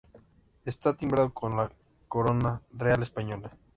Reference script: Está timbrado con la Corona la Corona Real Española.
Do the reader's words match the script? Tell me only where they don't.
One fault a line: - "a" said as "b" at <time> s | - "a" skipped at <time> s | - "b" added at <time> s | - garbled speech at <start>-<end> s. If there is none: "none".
- "la Corona" skipped at 2.6 s